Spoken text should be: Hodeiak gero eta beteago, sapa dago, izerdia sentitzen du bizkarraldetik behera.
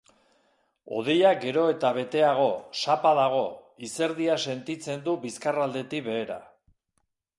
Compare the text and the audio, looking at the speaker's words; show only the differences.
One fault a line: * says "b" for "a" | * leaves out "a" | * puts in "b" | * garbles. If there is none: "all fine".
all fine